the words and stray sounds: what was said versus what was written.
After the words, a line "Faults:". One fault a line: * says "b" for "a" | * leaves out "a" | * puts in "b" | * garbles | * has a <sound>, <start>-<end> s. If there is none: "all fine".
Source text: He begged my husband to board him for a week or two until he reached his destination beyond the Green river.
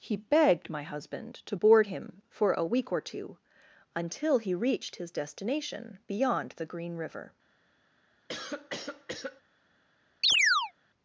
He begged my husband to board him for a week or two until he reached his destination beyond the Green river.
Faults:
* has a cough, 8.3-9.4 s
* has a chirp, 10.2-10.7 s